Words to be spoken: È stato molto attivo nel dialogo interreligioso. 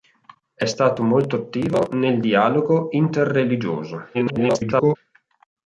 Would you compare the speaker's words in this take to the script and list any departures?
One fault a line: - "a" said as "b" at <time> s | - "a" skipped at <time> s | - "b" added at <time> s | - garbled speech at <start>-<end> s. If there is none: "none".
- garbled speech at 4.1-5.0 s